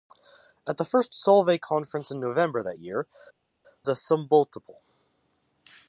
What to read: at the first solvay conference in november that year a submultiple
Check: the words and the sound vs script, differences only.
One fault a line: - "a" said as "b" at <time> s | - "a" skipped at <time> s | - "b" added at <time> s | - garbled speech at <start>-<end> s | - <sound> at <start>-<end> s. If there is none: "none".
none